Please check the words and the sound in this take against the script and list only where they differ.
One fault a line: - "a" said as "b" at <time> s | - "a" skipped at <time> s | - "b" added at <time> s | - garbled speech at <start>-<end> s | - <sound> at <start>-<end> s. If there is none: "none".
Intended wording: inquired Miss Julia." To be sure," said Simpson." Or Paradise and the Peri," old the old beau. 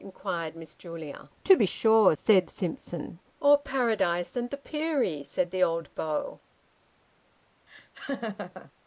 - "old" said as "said" at 5.2 s
- laugh at 7.7-8.7 s